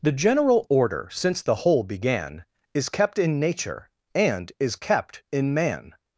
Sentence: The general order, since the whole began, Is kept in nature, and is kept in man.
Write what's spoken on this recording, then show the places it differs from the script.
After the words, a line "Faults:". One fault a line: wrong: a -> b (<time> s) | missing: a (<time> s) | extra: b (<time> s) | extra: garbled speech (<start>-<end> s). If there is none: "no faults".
The general order, since the whole began, Is kept in nature, and is kept in man.
Faults:
no faults